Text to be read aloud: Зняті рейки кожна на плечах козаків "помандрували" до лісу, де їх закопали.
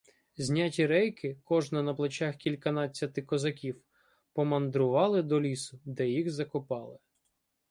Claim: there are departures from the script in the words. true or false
true